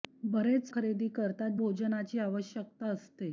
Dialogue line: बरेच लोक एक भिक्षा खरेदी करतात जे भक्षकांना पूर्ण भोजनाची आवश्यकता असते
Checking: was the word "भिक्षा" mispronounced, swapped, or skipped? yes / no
yes